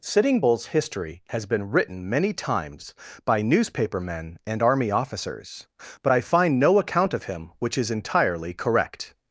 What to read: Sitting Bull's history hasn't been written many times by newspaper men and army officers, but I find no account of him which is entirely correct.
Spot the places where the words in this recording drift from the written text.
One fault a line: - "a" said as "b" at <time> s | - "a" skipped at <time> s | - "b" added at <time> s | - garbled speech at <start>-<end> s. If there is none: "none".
- "hasn't" said as "has" at 1.3 s